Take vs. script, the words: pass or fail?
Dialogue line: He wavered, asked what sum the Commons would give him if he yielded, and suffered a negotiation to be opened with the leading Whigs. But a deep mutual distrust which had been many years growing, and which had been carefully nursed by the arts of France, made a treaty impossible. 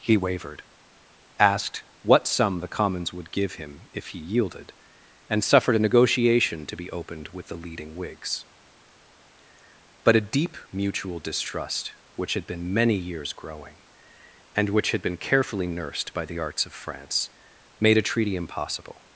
pass